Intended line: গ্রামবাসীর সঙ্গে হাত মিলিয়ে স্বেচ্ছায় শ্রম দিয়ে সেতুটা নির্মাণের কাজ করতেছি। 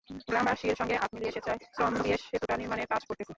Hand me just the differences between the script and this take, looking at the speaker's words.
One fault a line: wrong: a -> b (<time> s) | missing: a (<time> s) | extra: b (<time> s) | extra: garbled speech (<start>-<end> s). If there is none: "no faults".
no faults